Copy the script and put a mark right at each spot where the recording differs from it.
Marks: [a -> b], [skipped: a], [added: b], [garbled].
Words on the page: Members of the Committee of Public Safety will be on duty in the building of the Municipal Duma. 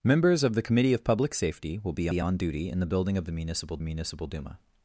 Members of the Committee of Public Safety will be [added: be] on duty in the building of the Municipal [added: Municipal] Duma.